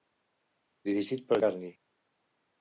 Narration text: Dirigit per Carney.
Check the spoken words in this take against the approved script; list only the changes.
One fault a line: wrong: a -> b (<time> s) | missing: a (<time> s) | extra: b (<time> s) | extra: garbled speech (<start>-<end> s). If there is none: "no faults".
no faults